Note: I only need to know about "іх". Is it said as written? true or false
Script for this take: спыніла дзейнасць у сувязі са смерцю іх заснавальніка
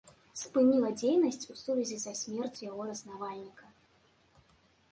false